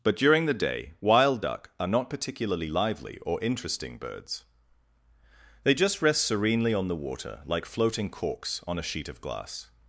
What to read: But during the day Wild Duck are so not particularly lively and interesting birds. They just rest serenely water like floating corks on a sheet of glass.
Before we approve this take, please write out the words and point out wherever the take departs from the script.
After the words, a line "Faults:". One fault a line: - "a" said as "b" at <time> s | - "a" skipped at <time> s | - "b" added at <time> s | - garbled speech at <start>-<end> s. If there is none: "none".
But during the day Wild Duck are not particularly lively or interesting birds. They just rest serenely on the water like floating corks on a sheet of glass.
Faults:
- "so" skipped at 1.9 s
- "and" said as "or" at 3.2 s
- "on the" added at 6.7 s